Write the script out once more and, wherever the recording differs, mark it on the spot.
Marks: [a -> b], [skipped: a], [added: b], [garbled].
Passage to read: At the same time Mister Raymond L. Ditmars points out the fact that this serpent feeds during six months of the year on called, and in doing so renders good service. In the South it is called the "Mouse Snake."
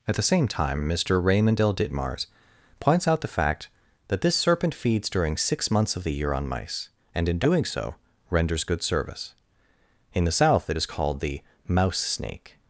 At the same time Mister Raymond L. Ditmars points out the fact that this serpent feeds during six months of the year on [called, -> mice] and in doing so renders good service. In the South it is called the "Mouse Snake."